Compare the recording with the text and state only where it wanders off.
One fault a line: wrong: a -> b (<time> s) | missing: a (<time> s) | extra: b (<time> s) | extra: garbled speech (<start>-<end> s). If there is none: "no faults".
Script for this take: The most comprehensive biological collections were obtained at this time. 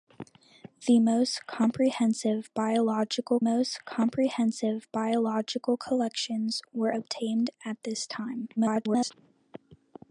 extra: most comprehensive biological (3.4 s)
extra: garbled speech (8.6-9.1 s)